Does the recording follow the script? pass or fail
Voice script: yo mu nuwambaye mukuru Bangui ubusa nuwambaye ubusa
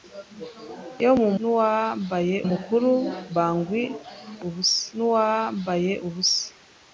pass